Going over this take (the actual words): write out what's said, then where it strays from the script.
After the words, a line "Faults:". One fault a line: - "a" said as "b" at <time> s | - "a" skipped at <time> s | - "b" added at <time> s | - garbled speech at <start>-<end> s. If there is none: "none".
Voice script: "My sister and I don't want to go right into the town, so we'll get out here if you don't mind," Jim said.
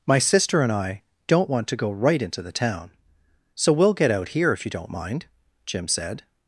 "My sister and I don't want to go right into the town, so we'll get out here if you don't mind," Jim said.
Faults:
none